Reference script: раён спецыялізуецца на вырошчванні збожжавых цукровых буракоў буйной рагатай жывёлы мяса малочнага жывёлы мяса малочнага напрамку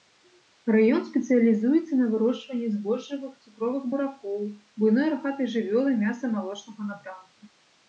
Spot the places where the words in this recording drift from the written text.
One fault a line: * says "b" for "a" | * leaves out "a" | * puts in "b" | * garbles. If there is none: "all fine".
* leaves out "жывёлы мяса малочнага"